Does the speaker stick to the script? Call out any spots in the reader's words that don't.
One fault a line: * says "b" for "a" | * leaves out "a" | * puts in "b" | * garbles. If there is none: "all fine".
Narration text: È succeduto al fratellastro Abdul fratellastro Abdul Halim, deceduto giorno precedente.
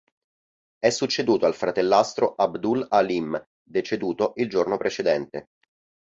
* leaves out "fratellastro Abdul"
* puts in "il"